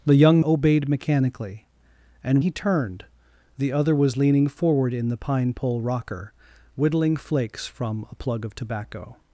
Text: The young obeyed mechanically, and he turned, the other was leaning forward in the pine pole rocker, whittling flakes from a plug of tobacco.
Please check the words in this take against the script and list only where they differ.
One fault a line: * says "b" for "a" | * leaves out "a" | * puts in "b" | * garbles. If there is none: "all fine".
all fine